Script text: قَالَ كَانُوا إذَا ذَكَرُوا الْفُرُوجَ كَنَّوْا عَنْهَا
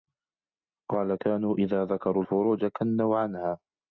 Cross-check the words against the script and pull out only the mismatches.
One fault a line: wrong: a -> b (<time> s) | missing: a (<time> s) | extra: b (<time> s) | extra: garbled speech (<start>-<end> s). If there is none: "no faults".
no faults